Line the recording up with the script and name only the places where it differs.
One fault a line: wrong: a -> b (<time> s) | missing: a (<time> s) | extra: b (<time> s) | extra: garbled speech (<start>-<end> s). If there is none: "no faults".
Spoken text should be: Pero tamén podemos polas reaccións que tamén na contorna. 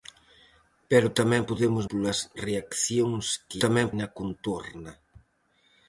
no faults